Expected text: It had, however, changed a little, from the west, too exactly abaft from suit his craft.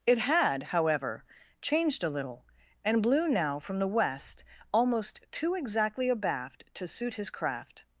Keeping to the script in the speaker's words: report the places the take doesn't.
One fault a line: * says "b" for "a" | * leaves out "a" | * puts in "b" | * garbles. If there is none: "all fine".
* puts in "and blew now"
* puts in "almost"
* says "to" for "from"